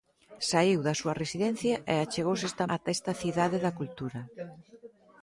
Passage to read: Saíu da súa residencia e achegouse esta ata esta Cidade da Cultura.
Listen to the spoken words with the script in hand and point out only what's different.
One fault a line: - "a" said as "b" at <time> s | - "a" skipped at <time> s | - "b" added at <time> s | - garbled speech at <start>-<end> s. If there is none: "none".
none